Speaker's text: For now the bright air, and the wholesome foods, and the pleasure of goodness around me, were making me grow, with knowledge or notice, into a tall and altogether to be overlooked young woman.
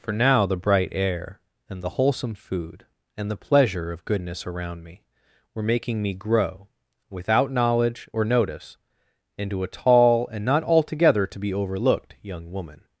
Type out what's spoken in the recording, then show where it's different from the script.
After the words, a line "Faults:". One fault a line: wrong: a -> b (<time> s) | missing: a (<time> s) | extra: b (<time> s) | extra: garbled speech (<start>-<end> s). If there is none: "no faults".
For now the bright air, and the wholesome food, and the pleasure of goodness around me, were making me grow, without knowledge or notice, into a tall and not altogether to be overlooked young woman.
Faults:
wrong: foods -> food (2.3 s)
wrong: with -> without (7.1 s)
extra: not (10.4 s)